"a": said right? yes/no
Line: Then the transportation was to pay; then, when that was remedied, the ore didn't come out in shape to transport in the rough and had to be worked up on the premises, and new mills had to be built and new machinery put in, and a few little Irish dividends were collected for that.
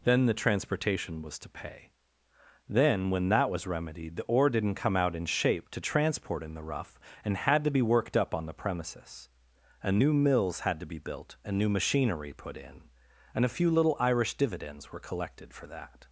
yes